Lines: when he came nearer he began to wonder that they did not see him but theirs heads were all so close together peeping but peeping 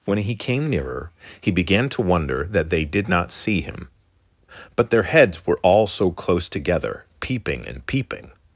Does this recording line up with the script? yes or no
no